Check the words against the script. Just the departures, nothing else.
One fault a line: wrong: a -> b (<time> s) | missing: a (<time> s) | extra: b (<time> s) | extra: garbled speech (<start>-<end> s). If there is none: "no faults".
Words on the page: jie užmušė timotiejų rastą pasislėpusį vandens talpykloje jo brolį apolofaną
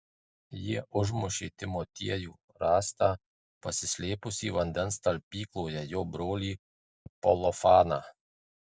no faults